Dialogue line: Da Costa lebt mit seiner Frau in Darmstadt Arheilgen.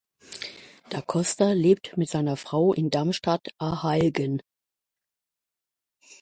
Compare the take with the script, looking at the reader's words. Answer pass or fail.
pass